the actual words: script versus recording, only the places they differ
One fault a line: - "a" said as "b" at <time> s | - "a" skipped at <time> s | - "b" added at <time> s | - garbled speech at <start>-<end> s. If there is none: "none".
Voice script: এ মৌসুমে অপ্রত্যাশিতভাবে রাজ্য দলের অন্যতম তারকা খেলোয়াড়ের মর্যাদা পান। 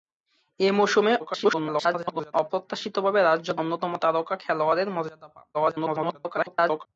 - garbled speech at 1.2-2.3 s
- "দলের" skipped at 3.5 s
- garbled speech at 5.5-6.9 s